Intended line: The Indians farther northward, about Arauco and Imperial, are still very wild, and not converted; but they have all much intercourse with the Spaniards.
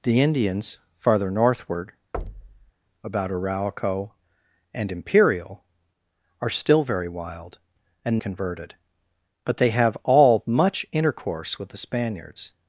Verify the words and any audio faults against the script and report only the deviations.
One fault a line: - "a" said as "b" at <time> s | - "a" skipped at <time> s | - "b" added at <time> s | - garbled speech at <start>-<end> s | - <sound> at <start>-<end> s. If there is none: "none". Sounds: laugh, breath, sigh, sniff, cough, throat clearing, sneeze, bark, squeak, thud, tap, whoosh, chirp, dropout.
- thud at 2.1-2.7 s
- "not" skipped at 8.2 s